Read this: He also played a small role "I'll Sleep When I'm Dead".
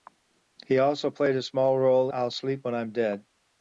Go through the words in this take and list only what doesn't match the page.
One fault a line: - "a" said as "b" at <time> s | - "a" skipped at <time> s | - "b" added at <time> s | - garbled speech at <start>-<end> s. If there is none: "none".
none